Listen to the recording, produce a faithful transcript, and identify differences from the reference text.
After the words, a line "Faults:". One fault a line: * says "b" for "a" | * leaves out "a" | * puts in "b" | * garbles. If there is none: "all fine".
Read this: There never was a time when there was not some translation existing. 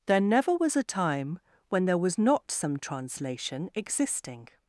There never was a time when there was not some translation existing.
Faults:
all fine